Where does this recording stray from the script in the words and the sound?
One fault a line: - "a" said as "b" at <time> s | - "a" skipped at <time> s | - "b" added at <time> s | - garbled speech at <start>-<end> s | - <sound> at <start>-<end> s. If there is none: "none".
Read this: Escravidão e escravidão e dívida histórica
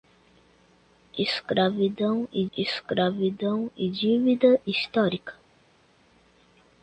none